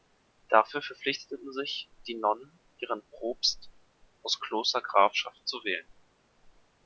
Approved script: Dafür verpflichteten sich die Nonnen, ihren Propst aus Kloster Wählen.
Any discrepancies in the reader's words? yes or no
yes